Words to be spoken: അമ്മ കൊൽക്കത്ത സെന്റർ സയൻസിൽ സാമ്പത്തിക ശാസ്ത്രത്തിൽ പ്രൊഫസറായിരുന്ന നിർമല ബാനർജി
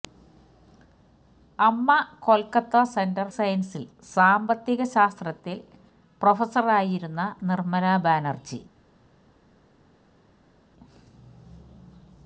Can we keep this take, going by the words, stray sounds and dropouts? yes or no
yes